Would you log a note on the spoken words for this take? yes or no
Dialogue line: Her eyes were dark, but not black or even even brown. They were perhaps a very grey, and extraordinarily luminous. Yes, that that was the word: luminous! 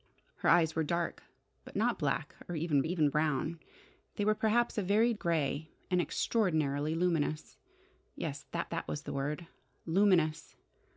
no